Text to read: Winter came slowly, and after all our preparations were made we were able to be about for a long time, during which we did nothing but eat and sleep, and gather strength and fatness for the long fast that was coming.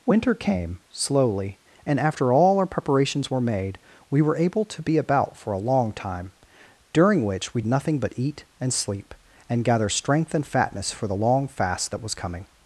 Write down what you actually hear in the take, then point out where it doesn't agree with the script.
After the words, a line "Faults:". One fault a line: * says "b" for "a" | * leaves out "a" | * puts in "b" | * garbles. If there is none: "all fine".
Winter came slowly, and after all our preparations were made we were able to be about for a long time, during which we nothing but eat and sleep, and gather strength and fatness for the long fast that was coming.
Faults:
* leaves out "did"